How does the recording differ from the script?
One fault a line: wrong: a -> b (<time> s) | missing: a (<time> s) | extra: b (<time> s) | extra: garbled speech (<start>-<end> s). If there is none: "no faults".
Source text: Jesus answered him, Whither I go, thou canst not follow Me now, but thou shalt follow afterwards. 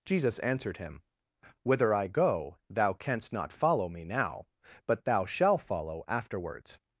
no faults